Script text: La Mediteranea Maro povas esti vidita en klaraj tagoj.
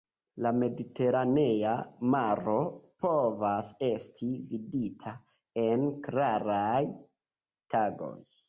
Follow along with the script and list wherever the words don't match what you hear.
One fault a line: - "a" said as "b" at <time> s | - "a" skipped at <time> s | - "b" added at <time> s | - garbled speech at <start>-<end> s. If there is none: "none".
none